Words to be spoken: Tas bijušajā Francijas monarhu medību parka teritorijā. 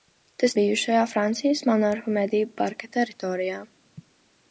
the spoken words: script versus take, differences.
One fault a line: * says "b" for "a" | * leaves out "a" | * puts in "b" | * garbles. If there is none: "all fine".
all fine